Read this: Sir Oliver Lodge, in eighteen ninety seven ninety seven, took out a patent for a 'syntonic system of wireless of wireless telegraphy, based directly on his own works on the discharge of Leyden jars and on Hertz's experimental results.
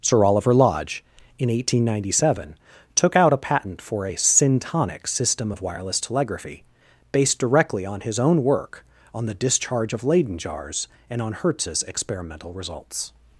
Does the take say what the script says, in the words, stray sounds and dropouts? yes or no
no